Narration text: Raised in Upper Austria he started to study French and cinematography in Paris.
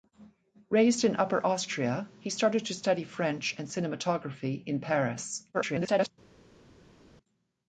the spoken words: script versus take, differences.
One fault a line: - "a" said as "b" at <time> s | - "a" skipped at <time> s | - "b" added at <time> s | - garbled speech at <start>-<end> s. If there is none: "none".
- garbled speech at 5.5-6.1 s